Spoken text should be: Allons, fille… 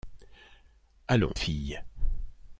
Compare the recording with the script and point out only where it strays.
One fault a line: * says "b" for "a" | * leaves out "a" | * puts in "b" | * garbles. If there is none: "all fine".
all fine